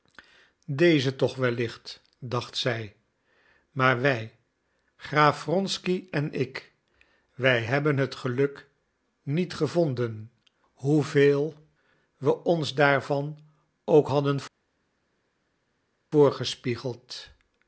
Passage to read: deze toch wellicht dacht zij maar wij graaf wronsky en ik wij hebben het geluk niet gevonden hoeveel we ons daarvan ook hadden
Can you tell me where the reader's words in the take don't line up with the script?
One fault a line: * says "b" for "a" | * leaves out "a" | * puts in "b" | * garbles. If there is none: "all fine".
all fine